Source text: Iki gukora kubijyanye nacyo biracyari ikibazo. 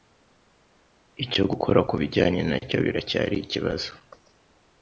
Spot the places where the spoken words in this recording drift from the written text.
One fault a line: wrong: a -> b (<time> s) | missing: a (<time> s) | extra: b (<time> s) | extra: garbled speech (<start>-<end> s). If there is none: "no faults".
wrong: Iki -> Icyo (1.2 s)